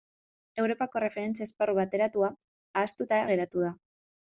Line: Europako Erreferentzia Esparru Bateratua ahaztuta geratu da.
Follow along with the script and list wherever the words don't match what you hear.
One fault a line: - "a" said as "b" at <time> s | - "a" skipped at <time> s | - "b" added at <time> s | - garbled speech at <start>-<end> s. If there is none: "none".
none